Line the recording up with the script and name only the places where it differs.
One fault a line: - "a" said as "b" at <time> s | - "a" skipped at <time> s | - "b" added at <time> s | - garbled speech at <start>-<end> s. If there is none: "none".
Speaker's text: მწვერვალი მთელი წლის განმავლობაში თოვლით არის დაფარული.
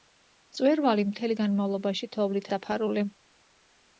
- "წლის" skipped at 1.4 s
- "არის" skipped at 2.5 s